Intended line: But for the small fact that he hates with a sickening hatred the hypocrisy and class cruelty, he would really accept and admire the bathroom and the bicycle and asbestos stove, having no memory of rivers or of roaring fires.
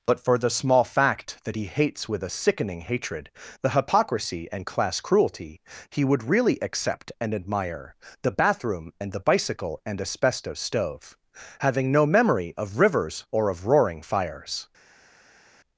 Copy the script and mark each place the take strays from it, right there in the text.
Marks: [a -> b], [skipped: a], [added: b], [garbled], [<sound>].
But for the small fact that he hates with a sickening hatred the hypocrisy and class cruelty, he would really accept and admire the bathroom and the bicycle and asbestos stove, having no memory of rivers or of roaring fires.